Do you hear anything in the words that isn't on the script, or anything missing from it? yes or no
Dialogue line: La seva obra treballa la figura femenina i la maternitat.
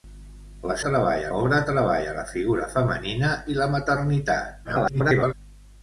yes